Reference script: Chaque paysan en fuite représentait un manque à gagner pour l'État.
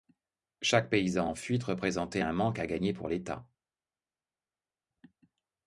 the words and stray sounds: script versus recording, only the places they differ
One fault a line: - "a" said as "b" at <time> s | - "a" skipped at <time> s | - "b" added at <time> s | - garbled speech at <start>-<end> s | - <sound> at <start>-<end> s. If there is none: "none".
none